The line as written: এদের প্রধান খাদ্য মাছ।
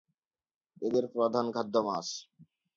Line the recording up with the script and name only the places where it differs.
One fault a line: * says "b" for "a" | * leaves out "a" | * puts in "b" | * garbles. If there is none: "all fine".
all fine